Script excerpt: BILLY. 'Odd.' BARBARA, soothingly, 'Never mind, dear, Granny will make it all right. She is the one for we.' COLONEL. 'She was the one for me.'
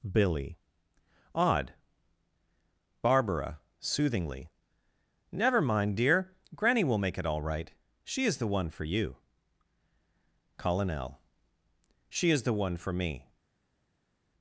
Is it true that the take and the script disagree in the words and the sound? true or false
true